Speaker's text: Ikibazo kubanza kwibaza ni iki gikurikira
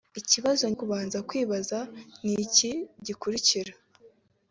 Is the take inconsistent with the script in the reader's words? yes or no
no